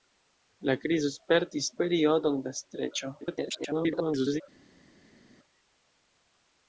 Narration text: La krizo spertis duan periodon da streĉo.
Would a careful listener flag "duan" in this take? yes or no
yes